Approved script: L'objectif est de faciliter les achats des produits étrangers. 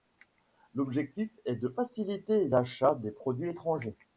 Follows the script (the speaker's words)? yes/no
yes